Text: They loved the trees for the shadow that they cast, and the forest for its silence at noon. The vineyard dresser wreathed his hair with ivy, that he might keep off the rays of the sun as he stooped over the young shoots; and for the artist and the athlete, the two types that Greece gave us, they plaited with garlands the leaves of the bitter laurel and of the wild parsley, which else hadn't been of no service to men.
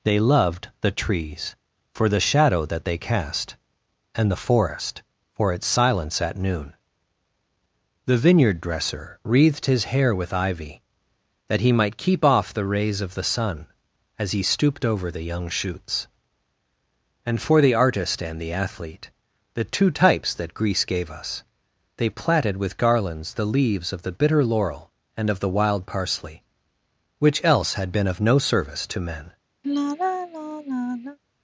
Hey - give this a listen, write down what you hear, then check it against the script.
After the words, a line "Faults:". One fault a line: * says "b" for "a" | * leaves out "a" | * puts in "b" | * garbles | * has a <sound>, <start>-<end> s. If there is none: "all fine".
They loved the trees for the shadow that they cast, and the forest for its silence at noon. The vineyard dresser wreathed his hair with ivy, that he might keep off the rays of the sun as he stooped over the young shoots; and for the artist and the athlete, the two types that Greece gave us, they plaited with garlands the leaves of the bitter laurel and of the wild parsley, which else had been of no service to men.
Faults:
* says "had" for "hadn't"
* has a sigh, 29.6-31.2 s